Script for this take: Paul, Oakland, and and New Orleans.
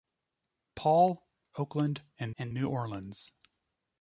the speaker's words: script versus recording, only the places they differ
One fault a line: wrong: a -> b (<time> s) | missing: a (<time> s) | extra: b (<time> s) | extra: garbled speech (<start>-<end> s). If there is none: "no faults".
no faults